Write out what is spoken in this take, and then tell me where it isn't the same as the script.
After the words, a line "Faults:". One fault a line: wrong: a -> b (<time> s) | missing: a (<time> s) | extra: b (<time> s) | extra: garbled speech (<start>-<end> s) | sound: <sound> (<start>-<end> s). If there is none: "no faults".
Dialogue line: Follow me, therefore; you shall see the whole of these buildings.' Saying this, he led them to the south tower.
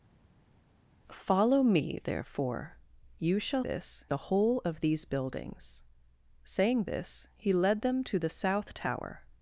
Follow me, therefore; you shall this the whole of these buildings.' Saying this, he led them to the south tower.
Faults:
wrong: see -> this (3.6 s)